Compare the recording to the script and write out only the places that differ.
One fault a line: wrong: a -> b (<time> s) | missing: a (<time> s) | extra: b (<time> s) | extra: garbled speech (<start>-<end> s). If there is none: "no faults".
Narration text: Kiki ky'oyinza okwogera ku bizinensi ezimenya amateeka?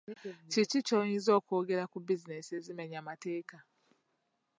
no faults